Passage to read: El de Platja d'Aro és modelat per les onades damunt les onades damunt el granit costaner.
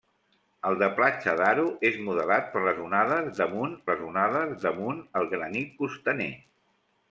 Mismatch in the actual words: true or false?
false